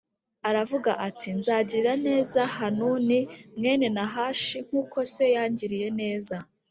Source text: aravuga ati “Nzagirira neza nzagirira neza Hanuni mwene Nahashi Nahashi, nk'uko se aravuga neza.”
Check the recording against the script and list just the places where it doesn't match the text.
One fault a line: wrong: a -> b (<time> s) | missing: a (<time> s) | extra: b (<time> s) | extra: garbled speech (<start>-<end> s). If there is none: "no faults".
missing: nzagirira neza (2.4 s)
missing: Nahashi (4.6 s)
wrong: aravuga -> yangiriye (5.3 s)